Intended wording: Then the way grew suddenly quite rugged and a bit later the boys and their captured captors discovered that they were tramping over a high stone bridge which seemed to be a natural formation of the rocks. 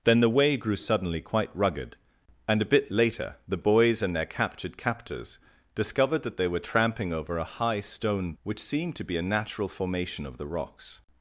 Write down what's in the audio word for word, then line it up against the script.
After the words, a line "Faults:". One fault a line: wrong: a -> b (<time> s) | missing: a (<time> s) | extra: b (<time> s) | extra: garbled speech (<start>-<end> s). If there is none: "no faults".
Then the way grew suddenly quite rugged and a bit later the boys and their captured captors discovered that they were tramping over a high stone which seemed to be a natural formation of the rocks.
Faults:
missing: bridge (8.3 s)